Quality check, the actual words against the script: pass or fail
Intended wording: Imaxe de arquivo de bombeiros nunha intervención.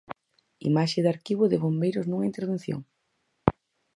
pass